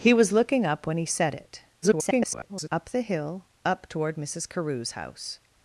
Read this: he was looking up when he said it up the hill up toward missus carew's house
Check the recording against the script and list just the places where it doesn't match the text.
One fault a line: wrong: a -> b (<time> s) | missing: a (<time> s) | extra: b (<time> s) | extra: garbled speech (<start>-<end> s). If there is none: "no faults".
extra: garbled speech (1.8-2.7 s)